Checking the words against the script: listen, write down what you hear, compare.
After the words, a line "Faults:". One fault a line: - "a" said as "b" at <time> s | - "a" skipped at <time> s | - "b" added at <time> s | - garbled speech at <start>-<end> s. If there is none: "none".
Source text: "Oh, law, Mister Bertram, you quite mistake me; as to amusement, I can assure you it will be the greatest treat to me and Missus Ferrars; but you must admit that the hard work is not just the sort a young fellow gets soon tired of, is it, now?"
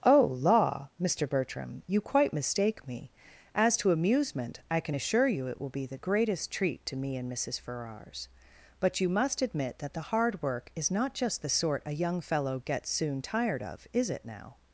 "Oh, law, Mister Bertram, you quite mistake me; as to amusement, I can assure you it will be the greatest treat to me and Missus Ferrars; but you must admit that the hard work is not just the sort a young fellow gets soon tired of, is it, now?"
Faults:
none